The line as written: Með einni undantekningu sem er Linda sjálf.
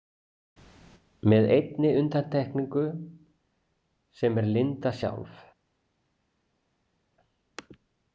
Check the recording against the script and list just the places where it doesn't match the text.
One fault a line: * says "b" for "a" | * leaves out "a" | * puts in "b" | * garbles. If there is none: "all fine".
all fine